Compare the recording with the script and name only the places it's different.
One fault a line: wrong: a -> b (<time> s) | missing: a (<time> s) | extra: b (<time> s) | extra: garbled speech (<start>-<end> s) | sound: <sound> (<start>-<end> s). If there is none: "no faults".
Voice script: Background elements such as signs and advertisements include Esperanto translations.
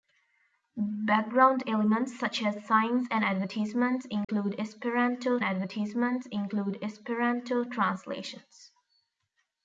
sound: dropout (4.2-4.3 s)
extra: advertisements include Esperanto (5.4 s)